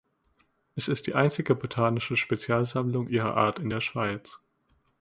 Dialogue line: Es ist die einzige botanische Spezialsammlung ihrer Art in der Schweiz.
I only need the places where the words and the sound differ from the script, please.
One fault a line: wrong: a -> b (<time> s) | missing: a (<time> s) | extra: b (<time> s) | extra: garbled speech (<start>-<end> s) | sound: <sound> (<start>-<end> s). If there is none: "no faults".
no faults